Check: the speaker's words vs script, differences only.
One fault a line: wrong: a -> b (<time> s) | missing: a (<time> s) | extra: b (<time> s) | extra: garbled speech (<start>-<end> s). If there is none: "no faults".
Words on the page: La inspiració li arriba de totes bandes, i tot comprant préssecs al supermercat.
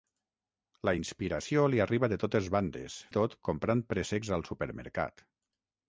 no faults